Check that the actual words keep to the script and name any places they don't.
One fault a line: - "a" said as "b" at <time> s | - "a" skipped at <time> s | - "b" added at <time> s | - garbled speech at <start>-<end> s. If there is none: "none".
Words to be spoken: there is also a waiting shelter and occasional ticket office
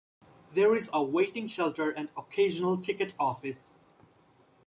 - "also" skipped at 0.9 s